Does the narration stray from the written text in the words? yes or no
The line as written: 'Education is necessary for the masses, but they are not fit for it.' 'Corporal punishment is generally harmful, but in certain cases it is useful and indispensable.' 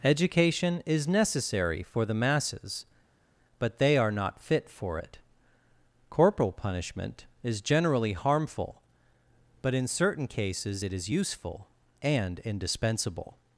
no